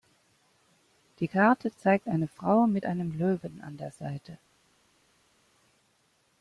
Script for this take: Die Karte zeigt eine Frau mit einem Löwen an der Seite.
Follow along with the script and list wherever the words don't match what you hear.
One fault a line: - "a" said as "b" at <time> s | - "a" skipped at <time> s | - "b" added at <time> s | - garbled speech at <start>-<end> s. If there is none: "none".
none